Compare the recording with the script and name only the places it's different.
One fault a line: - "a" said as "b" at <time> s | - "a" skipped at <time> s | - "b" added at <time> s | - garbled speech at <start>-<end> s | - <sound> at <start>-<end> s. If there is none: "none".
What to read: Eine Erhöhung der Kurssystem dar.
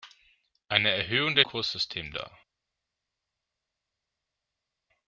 none